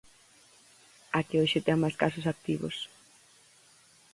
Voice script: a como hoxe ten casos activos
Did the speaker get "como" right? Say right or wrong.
wrong